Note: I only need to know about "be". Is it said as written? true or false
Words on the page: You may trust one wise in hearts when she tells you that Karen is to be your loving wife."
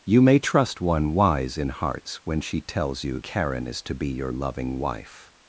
true